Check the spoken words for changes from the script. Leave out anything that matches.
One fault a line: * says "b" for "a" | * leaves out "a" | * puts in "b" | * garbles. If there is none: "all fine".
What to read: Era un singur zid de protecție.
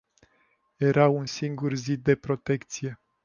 all fine